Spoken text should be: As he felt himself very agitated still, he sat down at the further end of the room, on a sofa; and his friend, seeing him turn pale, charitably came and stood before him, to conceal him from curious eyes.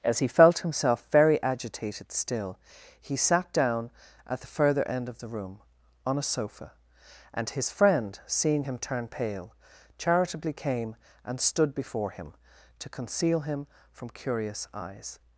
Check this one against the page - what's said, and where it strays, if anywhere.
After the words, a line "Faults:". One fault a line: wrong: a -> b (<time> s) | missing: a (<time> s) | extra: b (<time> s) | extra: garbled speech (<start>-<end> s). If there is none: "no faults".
As he felt himself very agitated still, he sat down at the further end of the room, on a sofa; and his friend, seeing him turn pale, charitably came and stood before him, to conceal him from curious eyes.
Faults:
no faults